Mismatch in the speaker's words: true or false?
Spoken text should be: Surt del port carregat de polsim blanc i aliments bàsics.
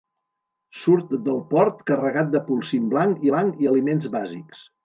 true